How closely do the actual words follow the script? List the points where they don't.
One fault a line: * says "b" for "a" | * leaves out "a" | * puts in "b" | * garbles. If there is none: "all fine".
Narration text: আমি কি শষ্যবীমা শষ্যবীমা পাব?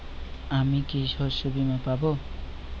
* leaves out "শষ্যবীমা"